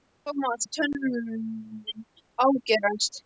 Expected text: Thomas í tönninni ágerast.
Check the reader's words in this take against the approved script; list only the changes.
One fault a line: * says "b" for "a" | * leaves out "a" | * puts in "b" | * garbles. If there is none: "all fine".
all fine